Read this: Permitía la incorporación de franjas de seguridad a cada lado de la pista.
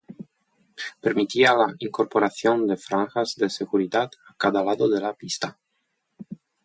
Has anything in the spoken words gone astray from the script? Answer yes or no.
no